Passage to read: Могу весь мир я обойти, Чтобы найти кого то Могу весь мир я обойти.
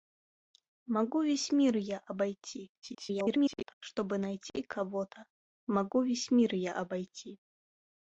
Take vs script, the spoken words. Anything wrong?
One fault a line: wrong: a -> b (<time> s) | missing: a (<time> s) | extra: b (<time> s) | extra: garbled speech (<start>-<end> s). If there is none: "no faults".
extra: garbled speech (2.8-3.7 s)